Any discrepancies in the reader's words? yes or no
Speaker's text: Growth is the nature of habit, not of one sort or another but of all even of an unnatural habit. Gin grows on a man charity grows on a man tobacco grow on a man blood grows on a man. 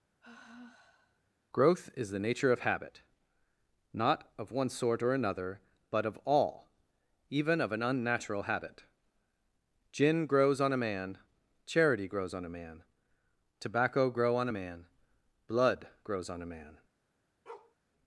no